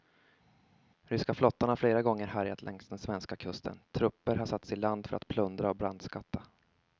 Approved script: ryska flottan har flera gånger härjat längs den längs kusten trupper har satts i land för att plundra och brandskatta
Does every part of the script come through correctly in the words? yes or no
no